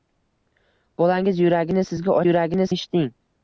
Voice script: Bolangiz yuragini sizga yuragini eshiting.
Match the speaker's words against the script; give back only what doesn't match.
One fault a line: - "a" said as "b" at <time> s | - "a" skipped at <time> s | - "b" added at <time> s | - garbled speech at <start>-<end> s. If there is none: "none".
none